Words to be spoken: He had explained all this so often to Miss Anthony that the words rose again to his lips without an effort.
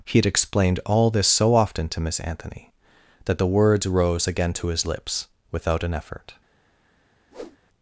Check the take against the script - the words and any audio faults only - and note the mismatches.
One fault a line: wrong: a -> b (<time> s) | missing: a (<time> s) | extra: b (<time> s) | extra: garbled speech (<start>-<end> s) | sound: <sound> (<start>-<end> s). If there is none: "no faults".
sound: whoosh (7.3-7.6 s)